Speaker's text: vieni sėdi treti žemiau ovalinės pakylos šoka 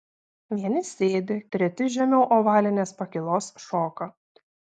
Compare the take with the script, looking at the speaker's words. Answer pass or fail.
pass